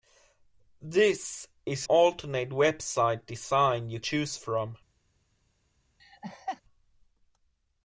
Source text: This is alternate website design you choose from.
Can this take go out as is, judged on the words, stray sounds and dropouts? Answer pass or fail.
fail